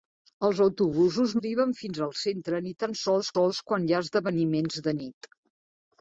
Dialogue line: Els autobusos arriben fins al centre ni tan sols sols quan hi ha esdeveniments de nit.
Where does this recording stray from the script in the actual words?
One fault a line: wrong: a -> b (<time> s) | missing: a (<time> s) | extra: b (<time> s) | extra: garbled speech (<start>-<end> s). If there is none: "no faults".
no faults